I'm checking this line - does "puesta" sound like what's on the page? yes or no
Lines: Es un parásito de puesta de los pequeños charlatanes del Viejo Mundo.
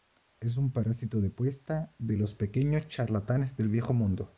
yes